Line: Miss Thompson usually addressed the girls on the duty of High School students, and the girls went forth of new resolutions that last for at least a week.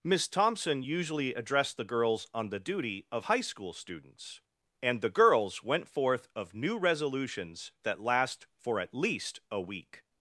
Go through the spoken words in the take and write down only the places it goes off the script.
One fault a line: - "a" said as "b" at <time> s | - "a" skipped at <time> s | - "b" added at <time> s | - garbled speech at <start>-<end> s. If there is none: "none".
none